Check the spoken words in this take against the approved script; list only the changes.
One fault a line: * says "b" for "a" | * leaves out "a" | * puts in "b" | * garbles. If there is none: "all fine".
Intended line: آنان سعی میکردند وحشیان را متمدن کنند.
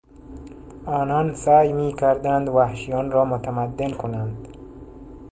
all fine